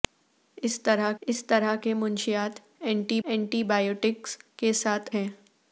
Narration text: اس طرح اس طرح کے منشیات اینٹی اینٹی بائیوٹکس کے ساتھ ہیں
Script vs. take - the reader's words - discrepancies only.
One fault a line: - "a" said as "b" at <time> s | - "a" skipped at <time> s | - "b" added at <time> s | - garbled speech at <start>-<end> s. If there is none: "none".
none